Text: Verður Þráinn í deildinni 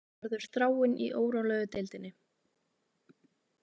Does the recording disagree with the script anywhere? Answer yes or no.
yes